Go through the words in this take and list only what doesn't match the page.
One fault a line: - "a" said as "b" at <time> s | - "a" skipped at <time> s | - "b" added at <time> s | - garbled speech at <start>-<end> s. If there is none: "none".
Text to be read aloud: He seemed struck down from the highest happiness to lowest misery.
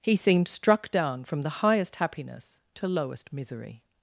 none